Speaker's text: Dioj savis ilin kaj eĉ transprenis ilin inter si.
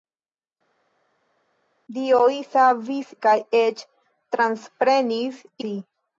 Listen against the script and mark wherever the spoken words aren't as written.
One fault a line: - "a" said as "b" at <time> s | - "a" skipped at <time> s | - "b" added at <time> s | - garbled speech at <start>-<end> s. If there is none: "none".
- "ilin" skipped at 3.1 s
- "ilin inter" skipped at 5.4 s